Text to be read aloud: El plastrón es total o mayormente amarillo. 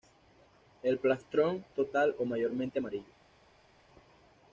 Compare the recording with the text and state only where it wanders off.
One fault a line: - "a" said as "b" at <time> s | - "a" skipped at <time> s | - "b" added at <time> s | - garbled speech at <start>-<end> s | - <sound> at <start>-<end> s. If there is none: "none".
- "es" skipped at 1.6 s